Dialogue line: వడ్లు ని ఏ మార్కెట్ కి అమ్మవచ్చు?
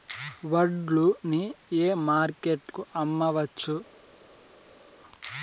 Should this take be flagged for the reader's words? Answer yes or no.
no